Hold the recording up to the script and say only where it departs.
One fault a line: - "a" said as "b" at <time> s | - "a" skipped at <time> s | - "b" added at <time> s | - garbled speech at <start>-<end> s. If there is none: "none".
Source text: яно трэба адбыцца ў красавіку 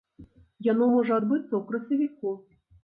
- "трэба" said as "можа" at 0.9 s